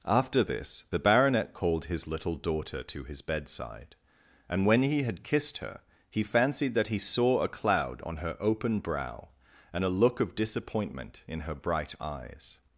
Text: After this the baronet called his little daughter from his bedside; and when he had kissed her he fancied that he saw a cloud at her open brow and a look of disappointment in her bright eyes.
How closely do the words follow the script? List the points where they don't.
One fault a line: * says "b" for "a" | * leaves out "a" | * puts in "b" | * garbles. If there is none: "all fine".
* says "to" for "from"
* says "on" for "at"